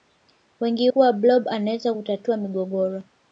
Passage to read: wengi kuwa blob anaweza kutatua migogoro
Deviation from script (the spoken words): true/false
false